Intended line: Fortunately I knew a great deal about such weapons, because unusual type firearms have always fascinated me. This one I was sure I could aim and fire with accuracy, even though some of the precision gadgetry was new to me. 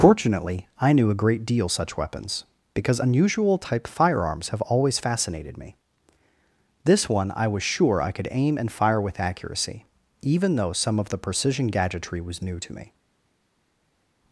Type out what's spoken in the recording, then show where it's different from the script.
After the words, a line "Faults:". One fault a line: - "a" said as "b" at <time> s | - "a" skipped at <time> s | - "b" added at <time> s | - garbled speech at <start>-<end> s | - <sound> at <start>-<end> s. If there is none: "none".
Fortunately I knew a great deal such weapons, because unusual type firearms have always fascinated me. This one I was sure I could aim and fire with accuracy, even though some of the precision gadgetry was new to me.
Faults:
- "about" skipped at 1.7 s